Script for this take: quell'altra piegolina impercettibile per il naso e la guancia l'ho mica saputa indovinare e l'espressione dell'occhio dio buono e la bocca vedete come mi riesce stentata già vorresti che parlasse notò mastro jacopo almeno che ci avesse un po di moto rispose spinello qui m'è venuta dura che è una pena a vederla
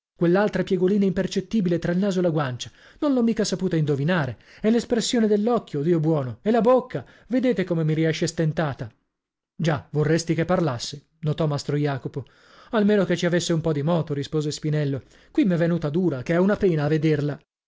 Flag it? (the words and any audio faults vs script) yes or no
yes